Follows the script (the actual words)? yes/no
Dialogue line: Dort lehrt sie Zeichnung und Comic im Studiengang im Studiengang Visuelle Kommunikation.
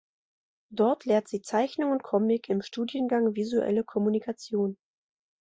no